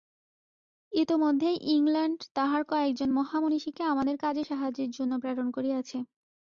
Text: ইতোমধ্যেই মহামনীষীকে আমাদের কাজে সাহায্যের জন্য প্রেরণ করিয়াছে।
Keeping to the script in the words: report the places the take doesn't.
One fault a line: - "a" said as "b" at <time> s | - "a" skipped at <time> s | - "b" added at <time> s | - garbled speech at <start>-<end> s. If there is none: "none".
- "ইংলণ্ড তাহার কয়েকজন" added at 1.7 s